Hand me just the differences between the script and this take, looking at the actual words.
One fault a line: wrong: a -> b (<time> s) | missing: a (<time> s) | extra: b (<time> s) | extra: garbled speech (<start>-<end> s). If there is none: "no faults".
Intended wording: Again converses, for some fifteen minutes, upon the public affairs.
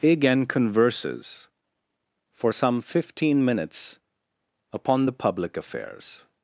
no faults